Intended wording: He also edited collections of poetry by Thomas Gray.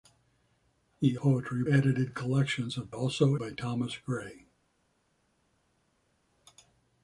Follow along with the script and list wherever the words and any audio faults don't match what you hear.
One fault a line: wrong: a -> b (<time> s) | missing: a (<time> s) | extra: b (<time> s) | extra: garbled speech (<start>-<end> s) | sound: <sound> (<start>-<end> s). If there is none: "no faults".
wrong: also -> poetry (1.1 s)
wrong: poetry -> also (2.9 s)